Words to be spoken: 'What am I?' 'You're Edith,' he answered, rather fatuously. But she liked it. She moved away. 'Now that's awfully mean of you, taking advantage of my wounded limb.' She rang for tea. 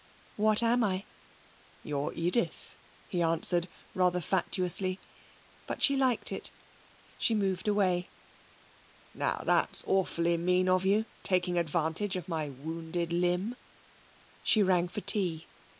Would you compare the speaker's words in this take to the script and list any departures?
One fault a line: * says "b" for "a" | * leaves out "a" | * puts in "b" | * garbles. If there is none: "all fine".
all fine